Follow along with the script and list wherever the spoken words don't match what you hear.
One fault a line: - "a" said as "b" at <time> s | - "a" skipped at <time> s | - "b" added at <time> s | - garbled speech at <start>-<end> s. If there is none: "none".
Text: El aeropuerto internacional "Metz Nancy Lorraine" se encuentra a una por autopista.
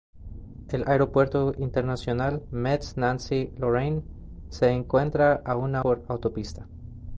none